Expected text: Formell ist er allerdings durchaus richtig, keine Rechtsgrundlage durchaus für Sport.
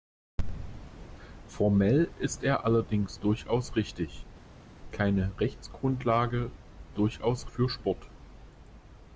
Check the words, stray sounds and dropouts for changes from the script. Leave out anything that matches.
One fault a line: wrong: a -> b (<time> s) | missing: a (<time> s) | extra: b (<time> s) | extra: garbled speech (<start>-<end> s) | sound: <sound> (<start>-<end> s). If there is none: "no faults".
no faults